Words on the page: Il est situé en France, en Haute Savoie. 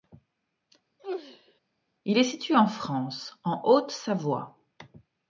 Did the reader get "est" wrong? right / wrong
right